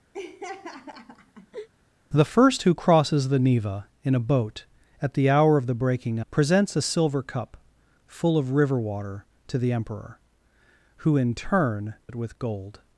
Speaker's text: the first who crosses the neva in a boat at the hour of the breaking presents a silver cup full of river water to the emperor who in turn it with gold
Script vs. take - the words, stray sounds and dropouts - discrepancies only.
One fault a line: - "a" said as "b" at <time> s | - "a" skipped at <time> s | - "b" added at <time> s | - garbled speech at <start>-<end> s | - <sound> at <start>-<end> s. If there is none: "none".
- laugh at 0.1-1.7 s